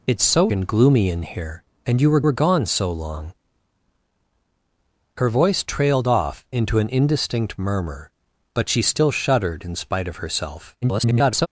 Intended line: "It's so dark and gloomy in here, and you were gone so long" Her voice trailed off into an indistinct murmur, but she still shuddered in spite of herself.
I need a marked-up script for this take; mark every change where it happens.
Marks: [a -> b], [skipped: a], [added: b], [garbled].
"It's so [skipped: dark] and gloomy in here, and you were [added: were] gone so long" Her voice trailed off into an indistinct murmur, but she still shuddered in spite of herself. [garbled]